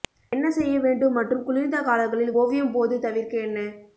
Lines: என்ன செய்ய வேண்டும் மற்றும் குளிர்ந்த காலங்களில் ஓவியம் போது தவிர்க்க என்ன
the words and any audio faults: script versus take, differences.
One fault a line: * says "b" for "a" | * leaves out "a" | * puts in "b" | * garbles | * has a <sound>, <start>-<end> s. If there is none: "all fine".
all fine